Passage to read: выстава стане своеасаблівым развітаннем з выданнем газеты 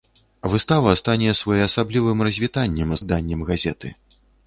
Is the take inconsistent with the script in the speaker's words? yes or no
no